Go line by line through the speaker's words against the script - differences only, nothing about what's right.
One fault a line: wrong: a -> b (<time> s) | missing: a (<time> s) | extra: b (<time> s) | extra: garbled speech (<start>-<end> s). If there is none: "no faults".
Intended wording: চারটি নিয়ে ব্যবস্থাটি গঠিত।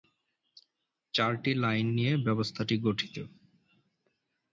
extra: লাইন (1.6 s)